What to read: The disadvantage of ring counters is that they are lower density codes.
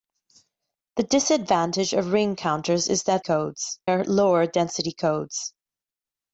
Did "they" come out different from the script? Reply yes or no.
yes